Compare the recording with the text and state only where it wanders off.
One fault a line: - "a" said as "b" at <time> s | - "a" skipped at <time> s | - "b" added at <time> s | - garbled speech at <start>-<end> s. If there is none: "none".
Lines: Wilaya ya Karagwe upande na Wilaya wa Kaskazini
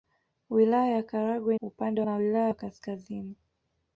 none